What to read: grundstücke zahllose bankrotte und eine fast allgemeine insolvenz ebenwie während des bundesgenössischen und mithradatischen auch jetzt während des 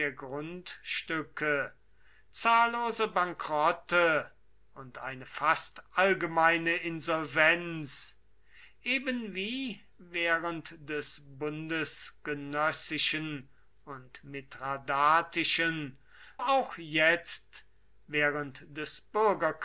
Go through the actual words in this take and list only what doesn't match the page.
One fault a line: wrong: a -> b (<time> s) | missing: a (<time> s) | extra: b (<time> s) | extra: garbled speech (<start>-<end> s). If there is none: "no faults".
no faults